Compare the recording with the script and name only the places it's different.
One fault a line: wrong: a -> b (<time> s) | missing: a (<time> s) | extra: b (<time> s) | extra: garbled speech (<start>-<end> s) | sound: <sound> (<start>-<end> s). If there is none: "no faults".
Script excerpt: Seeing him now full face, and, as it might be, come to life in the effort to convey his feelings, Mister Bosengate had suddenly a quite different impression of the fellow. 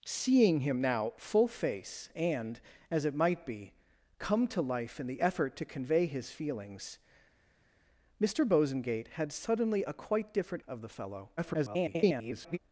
missing: impression (10.6 s)
extra: garbled speech (11.4-12.6 s)